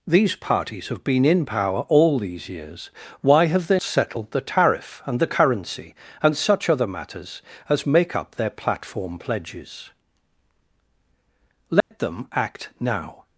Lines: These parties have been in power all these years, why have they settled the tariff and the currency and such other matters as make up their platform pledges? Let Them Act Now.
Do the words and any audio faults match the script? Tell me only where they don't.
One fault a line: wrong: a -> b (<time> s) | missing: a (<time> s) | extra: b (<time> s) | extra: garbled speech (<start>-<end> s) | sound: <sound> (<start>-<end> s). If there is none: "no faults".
sound: dropout (11.8-11.9 s)